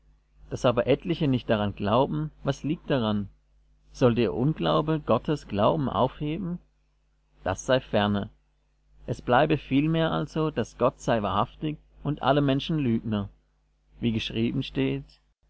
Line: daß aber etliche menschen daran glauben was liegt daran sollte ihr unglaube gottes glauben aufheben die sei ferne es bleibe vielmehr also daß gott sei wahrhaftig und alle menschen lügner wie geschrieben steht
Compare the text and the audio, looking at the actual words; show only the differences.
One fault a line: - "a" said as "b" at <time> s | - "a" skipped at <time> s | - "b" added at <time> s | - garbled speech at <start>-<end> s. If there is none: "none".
- "menschen" said as "nicht" at 1.3 s
- "die" said as "das" at 7.4 s